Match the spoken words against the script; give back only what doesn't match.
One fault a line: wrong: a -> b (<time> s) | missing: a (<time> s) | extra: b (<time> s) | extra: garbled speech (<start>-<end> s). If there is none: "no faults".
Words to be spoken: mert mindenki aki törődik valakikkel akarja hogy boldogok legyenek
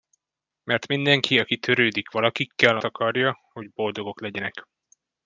no faults